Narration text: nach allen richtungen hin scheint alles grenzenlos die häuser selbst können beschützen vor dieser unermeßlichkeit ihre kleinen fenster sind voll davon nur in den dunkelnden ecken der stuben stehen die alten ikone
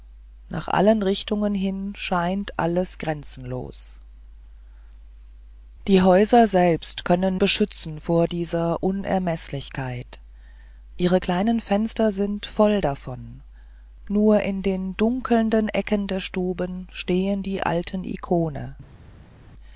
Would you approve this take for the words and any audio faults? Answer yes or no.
yes